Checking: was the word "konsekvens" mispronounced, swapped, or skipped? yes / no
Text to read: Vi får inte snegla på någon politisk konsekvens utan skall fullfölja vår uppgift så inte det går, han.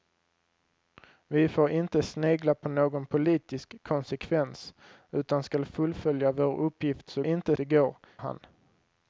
no